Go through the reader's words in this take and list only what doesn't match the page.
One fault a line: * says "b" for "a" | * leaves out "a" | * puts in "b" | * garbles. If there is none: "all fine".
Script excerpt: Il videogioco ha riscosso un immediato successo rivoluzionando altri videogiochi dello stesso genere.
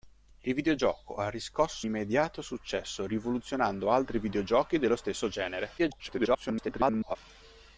* leaves out "un"
* garbles